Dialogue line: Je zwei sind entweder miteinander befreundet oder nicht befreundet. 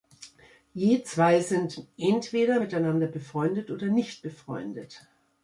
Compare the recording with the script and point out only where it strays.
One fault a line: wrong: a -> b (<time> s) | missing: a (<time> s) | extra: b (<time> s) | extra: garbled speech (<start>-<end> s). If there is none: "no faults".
no faults